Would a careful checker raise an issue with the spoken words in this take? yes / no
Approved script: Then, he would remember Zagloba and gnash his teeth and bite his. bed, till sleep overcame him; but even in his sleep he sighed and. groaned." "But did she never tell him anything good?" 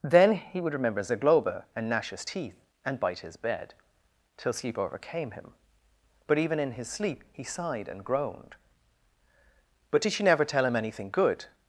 no